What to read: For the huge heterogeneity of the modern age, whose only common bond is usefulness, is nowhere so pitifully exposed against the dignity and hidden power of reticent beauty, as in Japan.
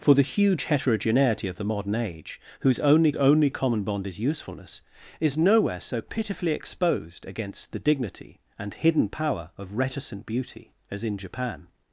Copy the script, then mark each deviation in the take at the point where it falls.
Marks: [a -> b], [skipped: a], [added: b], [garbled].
For the huge heterogeneity of the modern age, whose only [added: only] common bond is usefulness, is nowhere so pitifully exposed against the dignity and hidden power of reticent beauty, as in Japan.